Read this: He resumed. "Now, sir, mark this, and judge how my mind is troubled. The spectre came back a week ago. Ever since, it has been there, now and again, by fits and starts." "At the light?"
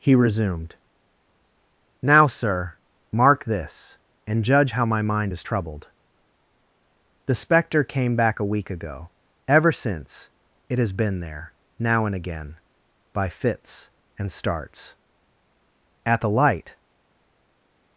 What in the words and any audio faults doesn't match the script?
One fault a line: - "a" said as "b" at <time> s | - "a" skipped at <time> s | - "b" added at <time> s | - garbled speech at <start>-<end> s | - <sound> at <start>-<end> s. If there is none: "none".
none